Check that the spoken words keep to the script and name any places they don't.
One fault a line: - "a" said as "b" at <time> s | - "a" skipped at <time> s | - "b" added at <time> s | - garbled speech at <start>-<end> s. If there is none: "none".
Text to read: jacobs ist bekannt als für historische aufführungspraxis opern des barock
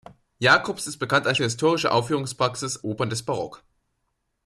none